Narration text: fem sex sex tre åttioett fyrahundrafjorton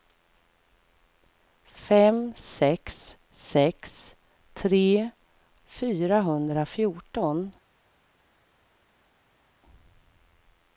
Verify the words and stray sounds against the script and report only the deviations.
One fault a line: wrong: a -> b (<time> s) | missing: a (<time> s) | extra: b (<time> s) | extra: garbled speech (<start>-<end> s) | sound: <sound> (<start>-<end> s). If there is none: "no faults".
missing: åttioett (5.1 s)